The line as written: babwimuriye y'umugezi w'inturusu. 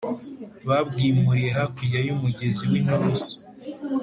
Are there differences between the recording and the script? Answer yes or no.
yes